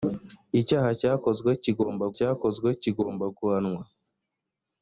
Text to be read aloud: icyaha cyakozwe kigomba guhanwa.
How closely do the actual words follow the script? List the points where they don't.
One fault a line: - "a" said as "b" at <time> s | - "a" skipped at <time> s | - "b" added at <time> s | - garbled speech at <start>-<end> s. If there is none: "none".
- "cyakozwe kigomba" added at 2.2 s